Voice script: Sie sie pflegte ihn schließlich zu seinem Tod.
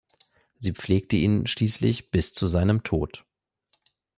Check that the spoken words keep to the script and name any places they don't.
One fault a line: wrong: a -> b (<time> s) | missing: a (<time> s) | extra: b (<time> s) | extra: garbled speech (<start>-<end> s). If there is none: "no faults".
missing: sie (0.7 s)
extra: bis (2.1 s)